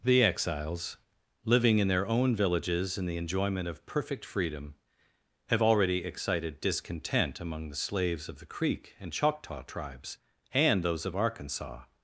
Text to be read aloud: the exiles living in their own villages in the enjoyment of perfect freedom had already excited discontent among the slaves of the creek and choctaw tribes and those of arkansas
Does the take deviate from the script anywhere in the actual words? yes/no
yes